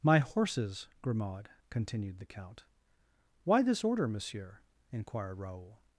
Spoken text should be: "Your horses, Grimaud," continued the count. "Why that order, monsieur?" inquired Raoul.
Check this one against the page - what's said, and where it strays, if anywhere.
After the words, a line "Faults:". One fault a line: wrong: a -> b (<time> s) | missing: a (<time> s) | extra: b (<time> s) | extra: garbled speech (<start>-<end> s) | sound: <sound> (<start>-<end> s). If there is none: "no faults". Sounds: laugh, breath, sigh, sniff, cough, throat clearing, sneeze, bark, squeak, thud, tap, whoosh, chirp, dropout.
"My horses, Grimaud," continued the count. "Why this order, monsieur?" inquired Raoul.
Faults:
wrong: Your -> My (0.0 s)
wrong: that -> this (3.6 s)